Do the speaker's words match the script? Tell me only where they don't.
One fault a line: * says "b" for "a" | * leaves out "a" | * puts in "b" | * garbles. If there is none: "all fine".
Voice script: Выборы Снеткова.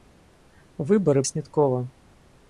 all fine